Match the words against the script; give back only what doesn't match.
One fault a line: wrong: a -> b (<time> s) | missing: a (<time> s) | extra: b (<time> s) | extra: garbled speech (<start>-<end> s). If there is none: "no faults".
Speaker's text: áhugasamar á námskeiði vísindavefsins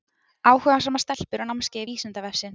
extra: stelpur (1.0 s)